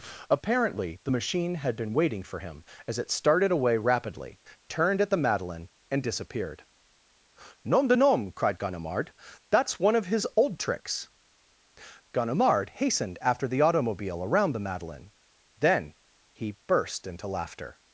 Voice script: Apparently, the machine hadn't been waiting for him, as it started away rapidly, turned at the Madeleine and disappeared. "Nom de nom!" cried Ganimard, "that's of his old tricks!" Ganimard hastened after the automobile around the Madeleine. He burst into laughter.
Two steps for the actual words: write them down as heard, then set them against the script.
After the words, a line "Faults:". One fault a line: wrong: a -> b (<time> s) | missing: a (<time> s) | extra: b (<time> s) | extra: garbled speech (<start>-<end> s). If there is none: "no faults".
Apparently, the machine had been waiting for him, as it started away rapidly, turned at the Madeleine and disappeared. "Nom de nom!" cried Ganimard, "that's one of his old tricks!" Ganimard hastened after the automobile around the Madeleine. Then, he burst into laughter.
Faults:
wrong: hadn't -> had (1.5 s)
extra: one (9.8 s)
extra: Then (15.6 s)